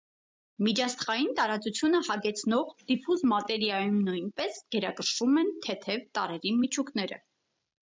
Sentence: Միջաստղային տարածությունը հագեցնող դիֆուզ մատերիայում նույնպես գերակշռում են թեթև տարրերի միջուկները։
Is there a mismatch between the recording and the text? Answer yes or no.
no